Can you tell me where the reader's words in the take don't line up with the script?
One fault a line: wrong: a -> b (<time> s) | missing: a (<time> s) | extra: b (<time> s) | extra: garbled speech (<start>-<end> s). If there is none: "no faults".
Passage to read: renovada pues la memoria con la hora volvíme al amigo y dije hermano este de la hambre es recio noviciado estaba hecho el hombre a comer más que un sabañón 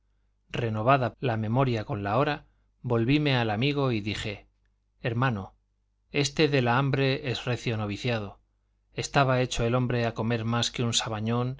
missing: pues (1.1 s)